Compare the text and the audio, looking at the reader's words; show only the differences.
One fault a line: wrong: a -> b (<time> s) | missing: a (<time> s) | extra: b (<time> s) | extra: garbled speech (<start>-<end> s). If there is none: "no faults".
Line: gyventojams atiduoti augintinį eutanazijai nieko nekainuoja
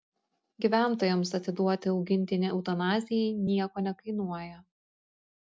no faults